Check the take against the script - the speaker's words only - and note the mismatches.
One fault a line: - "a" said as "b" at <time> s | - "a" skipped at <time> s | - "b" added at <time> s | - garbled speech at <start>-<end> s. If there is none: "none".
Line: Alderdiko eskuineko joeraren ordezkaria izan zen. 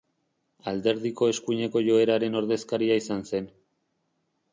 none